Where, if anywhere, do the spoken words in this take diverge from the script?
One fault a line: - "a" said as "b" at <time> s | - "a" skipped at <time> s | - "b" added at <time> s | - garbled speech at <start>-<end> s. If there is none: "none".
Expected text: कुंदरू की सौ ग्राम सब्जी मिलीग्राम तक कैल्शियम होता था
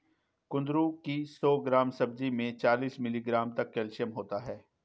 - "में चालीस" added at 2.3 s
- "था" said as "है" at 4.4 s